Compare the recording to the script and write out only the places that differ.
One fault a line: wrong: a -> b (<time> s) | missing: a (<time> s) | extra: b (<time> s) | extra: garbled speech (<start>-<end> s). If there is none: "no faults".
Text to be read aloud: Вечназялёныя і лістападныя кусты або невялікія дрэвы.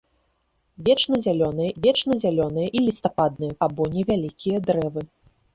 extra: вечназялёныя (1.8 s)
missing: кусты (3.5 s)